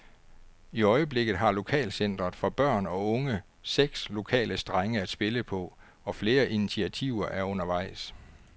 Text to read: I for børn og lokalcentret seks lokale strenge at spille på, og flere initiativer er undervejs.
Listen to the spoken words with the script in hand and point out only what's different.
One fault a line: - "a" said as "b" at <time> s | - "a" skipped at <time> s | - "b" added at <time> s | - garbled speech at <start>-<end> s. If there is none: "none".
- "øjeblikket har lokalcentret" added at 0.8 s
- "lokalcentret" said as "unge" at 3.1 s